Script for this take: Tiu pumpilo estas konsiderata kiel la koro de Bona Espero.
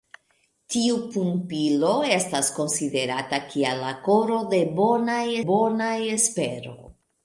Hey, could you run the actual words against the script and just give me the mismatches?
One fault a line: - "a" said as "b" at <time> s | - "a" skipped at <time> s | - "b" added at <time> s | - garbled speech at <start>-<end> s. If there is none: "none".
- "Bona" added at 5.5 s